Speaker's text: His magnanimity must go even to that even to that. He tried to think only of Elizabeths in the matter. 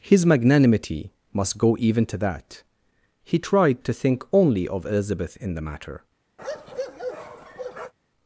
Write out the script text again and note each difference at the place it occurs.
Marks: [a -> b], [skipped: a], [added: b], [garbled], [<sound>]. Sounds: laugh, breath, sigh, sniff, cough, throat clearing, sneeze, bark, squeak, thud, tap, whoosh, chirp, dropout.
His magnanimity must go even to that [skipped: even to that.] He tried to think only of [Elizabeths -> Elizabeth] in the matter. [bark]